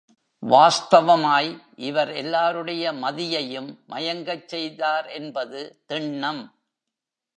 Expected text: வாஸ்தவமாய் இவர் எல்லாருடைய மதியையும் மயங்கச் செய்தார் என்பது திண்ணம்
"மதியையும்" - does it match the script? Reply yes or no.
yes